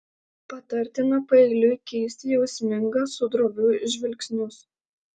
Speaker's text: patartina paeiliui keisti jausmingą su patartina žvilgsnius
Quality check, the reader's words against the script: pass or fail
fail